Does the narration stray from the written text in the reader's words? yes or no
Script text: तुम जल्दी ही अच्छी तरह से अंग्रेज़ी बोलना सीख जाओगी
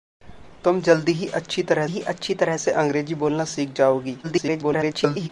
yes